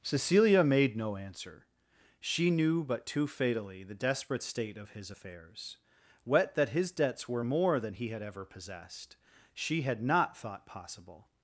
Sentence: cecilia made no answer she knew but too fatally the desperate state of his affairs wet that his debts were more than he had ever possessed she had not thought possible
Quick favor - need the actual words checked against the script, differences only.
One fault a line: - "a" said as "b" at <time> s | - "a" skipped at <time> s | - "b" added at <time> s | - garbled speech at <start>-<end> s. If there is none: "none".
none